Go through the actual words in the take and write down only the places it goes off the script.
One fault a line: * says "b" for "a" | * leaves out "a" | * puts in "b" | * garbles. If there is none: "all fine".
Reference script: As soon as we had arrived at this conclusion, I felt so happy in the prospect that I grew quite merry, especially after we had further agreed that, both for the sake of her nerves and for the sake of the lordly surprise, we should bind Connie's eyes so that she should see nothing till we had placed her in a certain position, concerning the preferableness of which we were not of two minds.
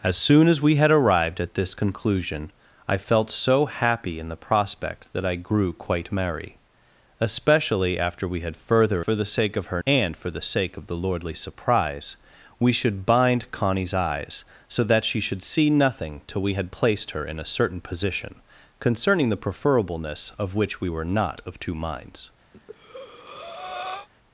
* leaves out "agreed that both"
* leaves out "nerves"